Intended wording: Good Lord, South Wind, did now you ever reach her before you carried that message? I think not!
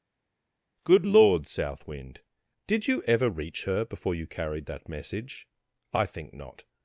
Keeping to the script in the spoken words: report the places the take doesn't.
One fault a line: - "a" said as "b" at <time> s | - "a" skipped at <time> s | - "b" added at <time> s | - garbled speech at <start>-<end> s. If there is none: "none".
- "now" skipped at 2.9 s